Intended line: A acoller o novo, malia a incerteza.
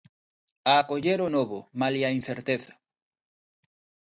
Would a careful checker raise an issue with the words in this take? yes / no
no